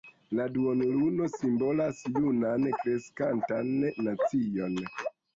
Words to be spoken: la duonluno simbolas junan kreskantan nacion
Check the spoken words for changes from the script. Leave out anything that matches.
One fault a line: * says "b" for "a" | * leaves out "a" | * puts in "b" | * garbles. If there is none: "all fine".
all fine